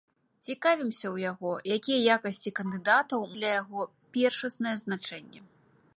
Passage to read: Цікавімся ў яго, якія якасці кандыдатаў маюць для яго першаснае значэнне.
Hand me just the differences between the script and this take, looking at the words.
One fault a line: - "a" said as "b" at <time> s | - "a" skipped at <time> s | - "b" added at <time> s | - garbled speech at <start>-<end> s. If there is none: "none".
- "маюць" skipped at 3.3 s